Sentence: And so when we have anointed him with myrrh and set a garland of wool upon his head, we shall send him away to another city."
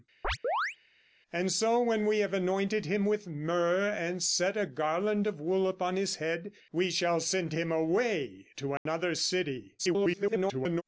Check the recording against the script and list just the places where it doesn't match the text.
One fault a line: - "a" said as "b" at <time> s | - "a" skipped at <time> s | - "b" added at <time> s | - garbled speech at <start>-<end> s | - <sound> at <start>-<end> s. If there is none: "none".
- chirp at 0.2-0.8 s
- dropout at 8.8-8.9 s
- garbled speech at 9.8-10.8 s